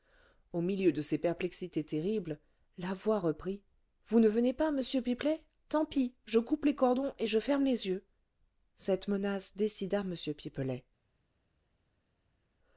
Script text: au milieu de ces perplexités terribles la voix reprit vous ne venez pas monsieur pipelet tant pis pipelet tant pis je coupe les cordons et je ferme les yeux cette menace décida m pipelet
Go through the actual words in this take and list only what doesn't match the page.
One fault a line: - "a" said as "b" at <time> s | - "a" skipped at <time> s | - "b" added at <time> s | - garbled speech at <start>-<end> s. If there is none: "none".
- "pipelet tant pis" skipped at 6.2 s